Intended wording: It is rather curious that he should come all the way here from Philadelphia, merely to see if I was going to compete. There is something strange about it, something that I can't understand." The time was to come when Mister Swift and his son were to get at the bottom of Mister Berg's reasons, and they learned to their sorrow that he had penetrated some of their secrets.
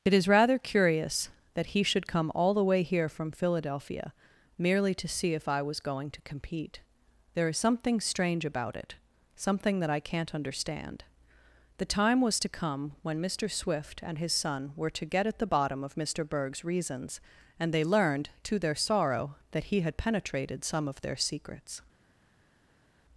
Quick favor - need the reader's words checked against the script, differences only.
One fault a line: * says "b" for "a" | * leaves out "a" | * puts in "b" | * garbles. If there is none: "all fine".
all fine